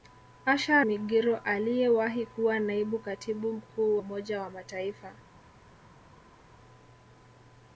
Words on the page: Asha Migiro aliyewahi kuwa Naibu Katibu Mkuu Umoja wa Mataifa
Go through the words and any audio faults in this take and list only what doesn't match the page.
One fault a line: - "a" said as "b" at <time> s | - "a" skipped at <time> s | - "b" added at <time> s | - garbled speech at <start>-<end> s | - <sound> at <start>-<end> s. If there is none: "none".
none